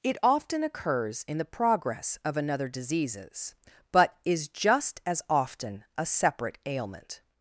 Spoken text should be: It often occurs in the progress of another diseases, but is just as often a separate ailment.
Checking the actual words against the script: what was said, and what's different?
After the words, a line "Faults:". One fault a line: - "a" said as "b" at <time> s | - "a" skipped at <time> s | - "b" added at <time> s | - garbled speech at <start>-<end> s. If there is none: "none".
It often occurs in the progress of another diseases, but is just as often a separate ailment.
Faults:
none